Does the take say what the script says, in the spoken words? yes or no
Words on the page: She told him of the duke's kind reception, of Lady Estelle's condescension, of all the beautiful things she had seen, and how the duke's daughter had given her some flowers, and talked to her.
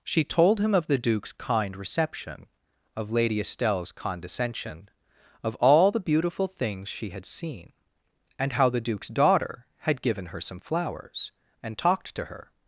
yes